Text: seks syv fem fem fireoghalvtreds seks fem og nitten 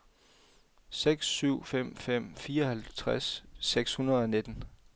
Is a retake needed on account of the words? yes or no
yes